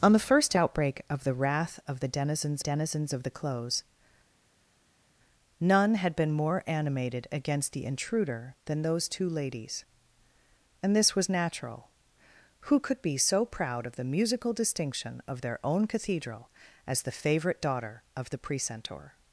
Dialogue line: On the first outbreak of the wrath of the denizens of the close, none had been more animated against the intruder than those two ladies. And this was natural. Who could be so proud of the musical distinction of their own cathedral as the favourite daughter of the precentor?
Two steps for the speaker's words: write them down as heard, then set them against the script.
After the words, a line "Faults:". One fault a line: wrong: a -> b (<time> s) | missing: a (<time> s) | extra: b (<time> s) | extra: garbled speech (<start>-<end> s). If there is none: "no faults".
On the first outbreak of the wrath of the denizens denizens of the close, none had been more animated against the intruder than those two ladies. And this was natural. Who could be so proud of the musical distinction of their own cathedral as the favourite daughter of the precentor?
Faults:
extra: denizens (2.6 s)